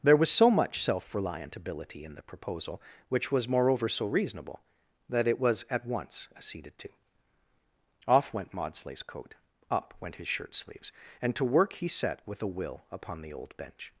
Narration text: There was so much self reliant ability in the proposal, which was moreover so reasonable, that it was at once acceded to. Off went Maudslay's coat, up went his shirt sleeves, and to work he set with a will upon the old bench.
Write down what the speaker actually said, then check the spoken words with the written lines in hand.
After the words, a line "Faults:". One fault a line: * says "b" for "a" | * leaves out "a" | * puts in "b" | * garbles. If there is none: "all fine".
There was so much self reliant ability in the proposal, which was moreover so reasonable, that it was at once acceded to. Off went Maudslay's coat, up went his shirt sleeves, and to work he set with a will upon the old bench.
Faults:
all fine